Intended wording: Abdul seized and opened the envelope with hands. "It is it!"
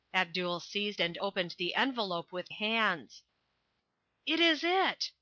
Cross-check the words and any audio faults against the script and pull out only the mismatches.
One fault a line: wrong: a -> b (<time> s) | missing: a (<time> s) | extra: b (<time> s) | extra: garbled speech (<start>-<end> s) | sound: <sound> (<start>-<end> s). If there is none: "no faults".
no faults